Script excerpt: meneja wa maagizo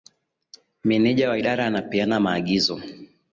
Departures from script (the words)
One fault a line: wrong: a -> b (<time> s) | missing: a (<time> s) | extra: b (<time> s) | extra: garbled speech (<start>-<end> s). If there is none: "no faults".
extra: idara anapeana (1.4 s)